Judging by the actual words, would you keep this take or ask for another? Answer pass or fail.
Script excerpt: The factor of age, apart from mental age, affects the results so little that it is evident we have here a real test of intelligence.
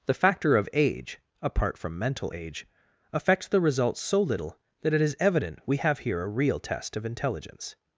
pass